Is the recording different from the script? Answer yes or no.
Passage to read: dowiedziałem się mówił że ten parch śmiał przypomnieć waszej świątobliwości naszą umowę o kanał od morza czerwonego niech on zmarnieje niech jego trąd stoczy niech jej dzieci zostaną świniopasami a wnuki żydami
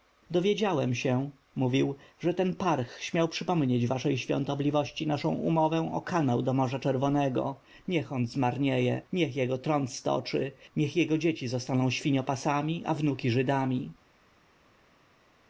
yes